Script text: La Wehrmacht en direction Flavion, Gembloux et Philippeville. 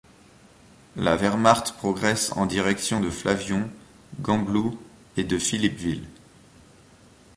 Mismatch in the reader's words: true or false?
true